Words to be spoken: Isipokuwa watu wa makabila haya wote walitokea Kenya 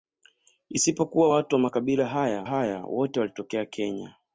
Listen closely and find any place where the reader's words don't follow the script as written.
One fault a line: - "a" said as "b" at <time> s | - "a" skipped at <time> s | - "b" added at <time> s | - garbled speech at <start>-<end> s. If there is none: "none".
- "haya" added at 2.4 s